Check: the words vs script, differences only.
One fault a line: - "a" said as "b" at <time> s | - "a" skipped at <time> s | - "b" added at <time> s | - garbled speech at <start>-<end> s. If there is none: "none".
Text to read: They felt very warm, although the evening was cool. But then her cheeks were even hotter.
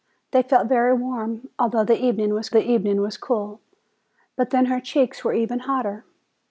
- "the evening was" added at 2.5 s